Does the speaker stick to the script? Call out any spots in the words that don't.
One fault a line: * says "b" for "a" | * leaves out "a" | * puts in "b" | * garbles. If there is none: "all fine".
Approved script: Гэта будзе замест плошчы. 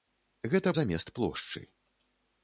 * leaves out "будзе"